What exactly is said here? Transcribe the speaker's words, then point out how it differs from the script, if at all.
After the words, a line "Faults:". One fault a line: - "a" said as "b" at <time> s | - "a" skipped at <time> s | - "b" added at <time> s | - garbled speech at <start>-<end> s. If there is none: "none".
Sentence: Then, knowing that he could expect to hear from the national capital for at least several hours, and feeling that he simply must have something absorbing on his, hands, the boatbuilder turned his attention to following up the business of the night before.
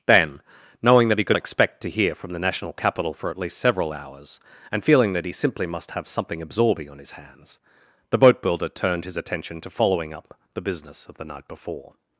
Then, knowing that he could expect to hear from the national capital for at least several hours, and feeling that he simply must have something absorbing on his, hands, the boatbuilder turned his attention to following up the business of the night before.
Faults:
none